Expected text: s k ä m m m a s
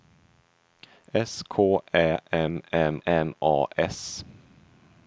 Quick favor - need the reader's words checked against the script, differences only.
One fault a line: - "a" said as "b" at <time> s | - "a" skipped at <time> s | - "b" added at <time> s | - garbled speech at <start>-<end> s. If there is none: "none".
none